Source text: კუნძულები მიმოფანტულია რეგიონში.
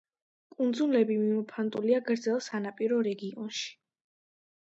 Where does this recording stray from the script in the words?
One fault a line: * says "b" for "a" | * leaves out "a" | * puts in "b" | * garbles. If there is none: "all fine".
* puts in "გრძელ სანაპირო"